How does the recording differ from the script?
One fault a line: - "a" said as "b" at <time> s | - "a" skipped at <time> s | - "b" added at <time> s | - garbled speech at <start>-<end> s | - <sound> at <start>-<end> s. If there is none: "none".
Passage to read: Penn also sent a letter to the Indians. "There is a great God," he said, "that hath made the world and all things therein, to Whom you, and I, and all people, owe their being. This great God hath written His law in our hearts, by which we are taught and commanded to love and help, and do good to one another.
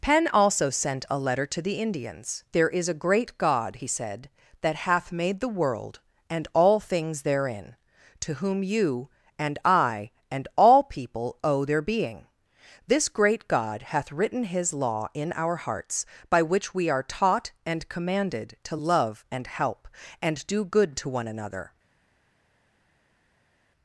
none